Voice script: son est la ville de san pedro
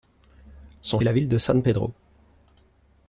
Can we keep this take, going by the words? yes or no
yes